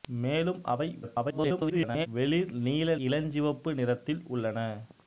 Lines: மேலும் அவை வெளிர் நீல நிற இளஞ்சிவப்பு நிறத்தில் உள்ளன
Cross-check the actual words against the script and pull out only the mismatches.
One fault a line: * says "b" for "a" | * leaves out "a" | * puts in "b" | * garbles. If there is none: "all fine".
* garbles
* leaves out "நிற"